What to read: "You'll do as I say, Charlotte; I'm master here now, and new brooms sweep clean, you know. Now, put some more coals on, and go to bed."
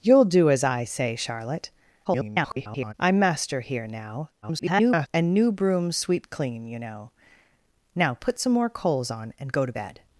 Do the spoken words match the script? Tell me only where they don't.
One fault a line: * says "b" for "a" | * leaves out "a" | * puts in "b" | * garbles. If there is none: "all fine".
* garbles
* garbles